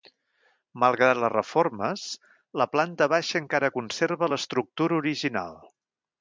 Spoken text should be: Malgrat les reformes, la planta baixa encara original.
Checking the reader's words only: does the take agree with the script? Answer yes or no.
no